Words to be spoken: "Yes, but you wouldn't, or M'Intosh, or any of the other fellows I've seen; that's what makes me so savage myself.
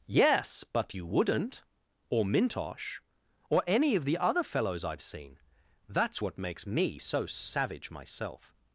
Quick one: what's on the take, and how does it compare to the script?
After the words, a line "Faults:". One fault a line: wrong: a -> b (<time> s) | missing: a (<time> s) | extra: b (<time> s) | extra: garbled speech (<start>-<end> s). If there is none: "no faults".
"Yes, but you wouldn't, or M'Intosh, or any of the other fellows I've seen; that's what makes me so savage myself.
Faults:
no faults